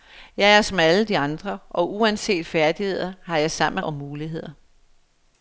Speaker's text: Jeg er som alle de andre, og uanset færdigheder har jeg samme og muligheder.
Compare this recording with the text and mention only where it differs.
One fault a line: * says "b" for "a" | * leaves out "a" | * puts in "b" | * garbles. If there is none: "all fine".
all fine